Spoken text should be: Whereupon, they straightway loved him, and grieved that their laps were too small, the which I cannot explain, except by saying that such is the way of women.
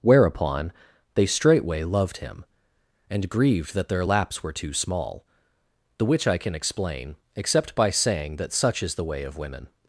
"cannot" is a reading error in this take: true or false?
true